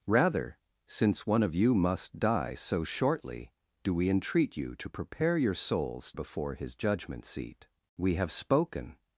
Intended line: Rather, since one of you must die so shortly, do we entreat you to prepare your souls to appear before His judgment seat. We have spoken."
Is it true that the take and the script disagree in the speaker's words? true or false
true